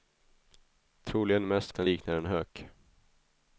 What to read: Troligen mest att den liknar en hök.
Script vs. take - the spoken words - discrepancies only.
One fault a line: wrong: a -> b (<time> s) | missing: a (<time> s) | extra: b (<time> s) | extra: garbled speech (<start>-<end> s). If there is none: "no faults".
no faults